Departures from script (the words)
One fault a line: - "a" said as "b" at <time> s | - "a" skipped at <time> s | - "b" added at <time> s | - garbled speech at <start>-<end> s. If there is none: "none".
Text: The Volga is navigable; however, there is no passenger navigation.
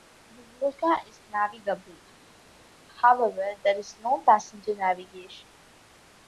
none